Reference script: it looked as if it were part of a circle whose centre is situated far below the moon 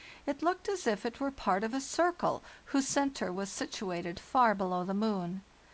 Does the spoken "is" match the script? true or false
false